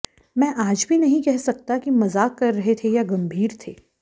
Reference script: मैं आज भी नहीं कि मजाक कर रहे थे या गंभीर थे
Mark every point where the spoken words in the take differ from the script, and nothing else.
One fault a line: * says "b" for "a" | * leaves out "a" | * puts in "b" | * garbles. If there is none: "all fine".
* puts in "कह सकता"